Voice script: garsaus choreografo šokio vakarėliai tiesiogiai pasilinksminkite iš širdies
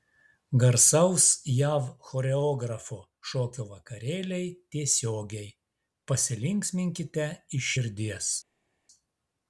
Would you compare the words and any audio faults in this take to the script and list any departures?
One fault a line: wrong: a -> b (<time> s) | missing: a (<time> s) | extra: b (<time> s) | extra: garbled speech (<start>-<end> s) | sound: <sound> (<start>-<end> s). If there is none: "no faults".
extra: jav (1.6 s)